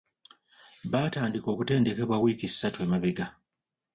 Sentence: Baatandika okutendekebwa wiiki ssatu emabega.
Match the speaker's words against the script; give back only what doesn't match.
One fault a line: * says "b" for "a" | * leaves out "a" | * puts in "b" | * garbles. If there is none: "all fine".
all fine